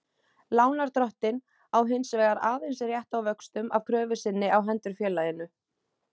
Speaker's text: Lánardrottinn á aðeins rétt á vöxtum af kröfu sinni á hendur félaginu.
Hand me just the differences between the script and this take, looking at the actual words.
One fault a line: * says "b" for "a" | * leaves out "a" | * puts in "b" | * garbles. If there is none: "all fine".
* puts in "hins vegar"